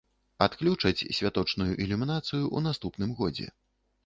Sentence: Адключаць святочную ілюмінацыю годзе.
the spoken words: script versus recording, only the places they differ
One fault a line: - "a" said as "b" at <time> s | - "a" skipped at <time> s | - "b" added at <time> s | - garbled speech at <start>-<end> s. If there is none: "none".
- "ў наступным" added at 2.4 s